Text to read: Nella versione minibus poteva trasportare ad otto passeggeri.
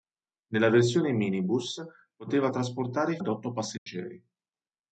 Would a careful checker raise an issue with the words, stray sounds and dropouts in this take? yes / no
yes